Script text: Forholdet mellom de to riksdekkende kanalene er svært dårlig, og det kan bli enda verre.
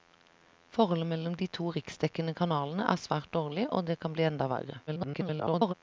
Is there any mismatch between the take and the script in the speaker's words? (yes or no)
yes